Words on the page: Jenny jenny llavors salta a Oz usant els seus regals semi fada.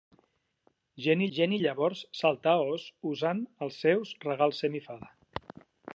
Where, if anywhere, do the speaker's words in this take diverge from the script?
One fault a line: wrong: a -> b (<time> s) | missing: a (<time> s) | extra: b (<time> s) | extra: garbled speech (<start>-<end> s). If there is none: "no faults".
no faults